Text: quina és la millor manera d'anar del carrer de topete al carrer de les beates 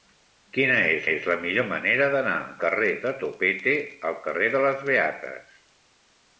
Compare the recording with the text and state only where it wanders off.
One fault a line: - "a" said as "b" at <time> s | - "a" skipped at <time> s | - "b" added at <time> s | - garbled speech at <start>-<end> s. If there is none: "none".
- "és" added at 1.1 s
- "del" skipped at 2.4 s